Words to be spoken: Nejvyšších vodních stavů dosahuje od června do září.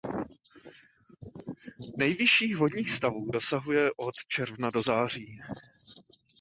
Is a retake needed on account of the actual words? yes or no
no